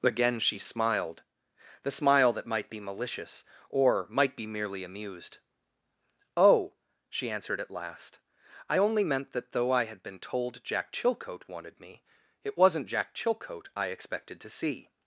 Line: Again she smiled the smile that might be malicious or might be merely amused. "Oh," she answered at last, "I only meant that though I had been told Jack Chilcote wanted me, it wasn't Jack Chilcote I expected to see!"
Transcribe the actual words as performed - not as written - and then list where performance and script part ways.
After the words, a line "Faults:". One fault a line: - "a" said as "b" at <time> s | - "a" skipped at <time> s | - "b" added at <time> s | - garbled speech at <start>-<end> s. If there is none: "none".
Again she smiled the smile that might be malicious or might be merely amused. "Oh," she answered at last, "I only meant that though I had been told Jack Chilcote wanted me, it wasn't Jack Chilcote I expected to see!"
Faults:
none